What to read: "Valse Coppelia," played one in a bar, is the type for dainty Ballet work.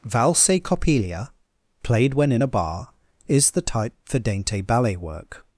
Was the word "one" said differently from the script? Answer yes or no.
yes